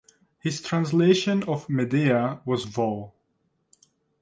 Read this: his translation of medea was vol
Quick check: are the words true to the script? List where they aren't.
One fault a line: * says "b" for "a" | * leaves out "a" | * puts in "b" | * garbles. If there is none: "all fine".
all fine